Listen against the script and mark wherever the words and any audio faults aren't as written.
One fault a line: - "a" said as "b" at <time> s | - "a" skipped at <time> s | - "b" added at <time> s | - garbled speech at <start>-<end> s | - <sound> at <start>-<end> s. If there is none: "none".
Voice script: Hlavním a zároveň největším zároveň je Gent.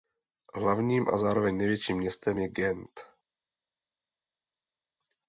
- "zároveň" said as "městem" at 2.0 s